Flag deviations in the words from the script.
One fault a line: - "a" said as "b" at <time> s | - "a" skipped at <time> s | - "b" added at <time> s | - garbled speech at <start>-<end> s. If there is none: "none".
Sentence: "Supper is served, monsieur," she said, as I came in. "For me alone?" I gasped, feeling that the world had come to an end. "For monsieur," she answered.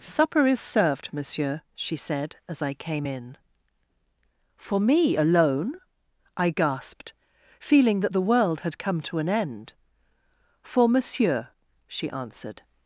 none